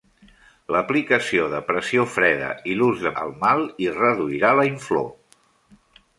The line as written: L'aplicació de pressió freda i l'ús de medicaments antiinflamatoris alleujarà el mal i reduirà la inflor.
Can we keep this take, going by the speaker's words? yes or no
no